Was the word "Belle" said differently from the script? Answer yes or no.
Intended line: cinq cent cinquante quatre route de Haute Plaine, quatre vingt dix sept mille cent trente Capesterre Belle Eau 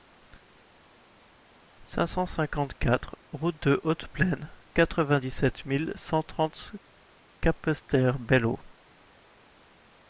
no